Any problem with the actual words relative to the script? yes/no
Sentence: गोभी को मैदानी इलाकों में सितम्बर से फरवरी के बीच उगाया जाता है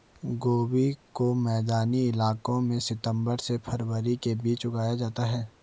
no